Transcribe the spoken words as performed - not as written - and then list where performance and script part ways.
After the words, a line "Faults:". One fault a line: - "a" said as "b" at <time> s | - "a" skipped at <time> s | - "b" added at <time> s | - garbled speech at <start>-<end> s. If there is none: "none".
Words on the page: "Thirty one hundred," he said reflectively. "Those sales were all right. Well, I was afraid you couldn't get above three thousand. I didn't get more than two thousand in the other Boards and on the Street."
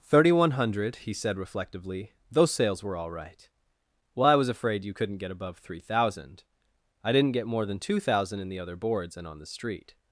"Thirty one hundred," he said reflectively. "Those sales were all right. Well, I was afraid you couldn't get above three thousand. I didn't get more than two thousand in the other Boards and on the Street."
Faults:
none